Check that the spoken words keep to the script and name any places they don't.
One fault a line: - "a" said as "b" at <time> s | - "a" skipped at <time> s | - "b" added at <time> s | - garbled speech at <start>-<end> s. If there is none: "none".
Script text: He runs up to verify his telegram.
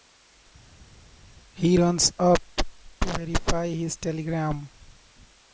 none